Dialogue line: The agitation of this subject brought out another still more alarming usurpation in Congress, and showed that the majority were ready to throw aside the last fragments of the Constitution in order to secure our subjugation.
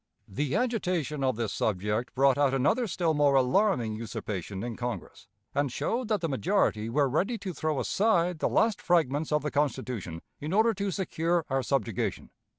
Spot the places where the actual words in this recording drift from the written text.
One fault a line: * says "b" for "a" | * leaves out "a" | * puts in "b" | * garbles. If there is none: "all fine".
all fine